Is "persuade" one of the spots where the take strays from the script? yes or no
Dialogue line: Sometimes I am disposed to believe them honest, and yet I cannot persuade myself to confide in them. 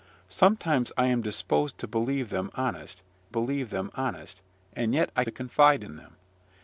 yes